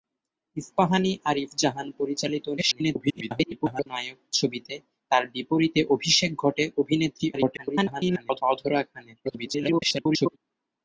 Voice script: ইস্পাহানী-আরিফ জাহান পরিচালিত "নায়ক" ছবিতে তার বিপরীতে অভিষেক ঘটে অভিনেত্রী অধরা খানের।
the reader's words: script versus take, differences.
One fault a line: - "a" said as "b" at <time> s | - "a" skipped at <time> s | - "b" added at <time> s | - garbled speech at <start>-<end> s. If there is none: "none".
- garbled speech at 2.6-3.9 s
- garbled speech at 7.3-8.4 s
- garbled speech at 9.2-10.4 s